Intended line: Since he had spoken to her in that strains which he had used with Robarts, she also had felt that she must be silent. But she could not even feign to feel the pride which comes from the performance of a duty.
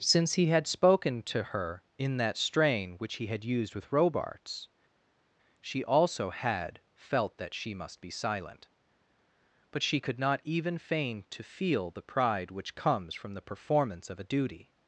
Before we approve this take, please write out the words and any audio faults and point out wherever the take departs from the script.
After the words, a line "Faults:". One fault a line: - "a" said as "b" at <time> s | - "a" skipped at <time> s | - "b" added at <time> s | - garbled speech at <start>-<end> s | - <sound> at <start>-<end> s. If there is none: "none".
Since he had spoken to her in that strain which he had used with Robarts, she also had felt that she must be silent. But she could not even feign to feel the pride which comes from the performance of a duty.
Faults:
- "strains" said as "strain" at 2.4 s